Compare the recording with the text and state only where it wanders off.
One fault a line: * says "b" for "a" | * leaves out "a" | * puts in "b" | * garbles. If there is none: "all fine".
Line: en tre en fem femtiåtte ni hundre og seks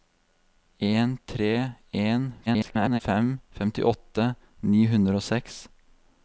* garbles